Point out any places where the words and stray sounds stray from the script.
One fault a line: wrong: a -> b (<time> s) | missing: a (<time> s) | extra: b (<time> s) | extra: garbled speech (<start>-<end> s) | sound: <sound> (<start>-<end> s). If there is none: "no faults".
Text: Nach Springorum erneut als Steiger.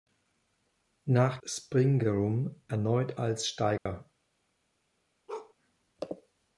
sound: dropout (3.8-3.9 s)
sound: bark (5.3-5.5 s)